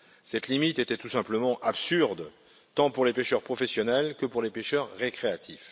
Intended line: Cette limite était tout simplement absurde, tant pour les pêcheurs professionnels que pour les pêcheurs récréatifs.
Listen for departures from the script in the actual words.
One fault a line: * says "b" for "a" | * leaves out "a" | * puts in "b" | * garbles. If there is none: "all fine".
all fine